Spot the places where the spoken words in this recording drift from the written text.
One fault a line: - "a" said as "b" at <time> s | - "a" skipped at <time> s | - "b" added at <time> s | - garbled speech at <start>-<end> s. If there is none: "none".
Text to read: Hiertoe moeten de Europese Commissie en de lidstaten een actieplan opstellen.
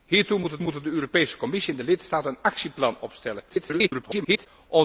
- "moeten" added at 0.6 s
- garbled speech at 3.5-4.5 s